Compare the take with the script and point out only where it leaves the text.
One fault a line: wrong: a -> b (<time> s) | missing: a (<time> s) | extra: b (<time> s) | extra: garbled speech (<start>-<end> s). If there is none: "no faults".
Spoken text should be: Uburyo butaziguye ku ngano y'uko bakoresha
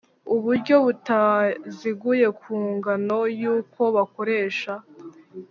no faults